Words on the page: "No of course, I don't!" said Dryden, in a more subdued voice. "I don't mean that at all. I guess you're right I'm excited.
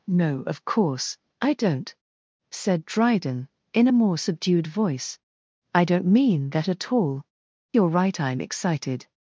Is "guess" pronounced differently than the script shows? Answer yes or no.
yes